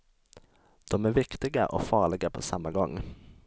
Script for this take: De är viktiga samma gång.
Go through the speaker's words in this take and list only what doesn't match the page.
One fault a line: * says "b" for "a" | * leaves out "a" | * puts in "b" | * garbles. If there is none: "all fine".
* puts in "och farliga på"